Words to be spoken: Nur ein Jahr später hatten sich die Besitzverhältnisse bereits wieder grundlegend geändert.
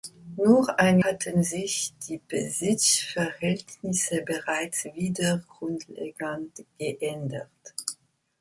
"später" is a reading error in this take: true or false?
true